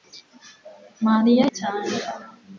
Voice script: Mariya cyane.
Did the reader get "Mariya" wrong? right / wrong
right